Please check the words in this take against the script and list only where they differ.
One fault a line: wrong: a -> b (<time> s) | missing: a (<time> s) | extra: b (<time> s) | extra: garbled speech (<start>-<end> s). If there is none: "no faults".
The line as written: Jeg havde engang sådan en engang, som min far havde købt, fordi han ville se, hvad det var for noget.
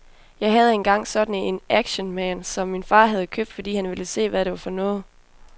wrong: engang -> actionman (1.7 s)